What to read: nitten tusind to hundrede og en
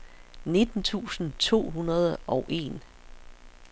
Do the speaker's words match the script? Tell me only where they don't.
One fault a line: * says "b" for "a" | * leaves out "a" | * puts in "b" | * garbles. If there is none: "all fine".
all fine